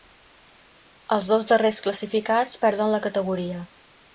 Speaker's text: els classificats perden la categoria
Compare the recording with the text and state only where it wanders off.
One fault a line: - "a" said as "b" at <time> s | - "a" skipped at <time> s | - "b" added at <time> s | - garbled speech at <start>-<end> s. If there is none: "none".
- "dos darrers" added at 1.3 s